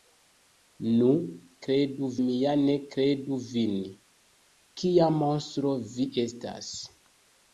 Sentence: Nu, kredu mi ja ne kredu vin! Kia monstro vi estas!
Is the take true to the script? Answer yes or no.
yes